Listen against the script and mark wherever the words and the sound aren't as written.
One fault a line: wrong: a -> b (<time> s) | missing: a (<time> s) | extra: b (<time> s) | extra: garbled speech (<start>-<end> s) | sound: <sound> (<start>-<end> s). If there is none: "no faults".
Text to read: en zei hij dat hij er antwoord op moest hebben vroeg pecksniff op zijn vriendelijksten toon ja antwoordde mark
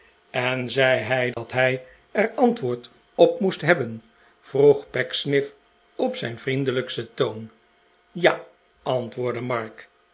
sound: dropout (1.3-1.4 s)